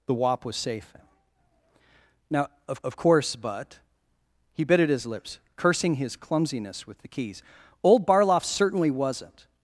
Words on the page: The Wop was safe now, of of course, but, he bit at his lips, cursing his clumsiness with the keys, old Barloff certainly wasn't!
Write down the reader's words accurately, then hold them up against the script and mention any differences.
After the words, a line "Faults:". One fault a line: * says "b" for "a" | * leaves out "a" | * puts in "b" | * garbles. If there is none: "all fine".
The Wop was safe now, of of course, but, he bit at his lips, cursing his clumsiness with the keys, old Barloff certainly wasn't!
Faults:
all fine